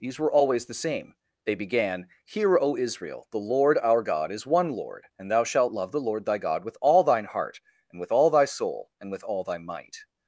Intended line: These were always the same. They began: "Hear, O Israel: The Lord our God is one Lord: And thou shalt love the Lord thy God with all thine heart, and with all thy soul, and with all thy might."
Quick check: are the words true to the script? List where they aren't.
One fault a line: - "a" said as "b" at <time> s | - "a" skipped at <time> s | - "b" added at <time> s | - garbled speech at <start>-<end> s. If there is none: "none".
none